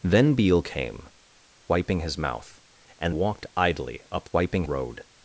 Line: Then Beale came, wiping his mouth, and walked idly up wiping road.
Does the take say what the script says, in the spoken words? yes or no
yes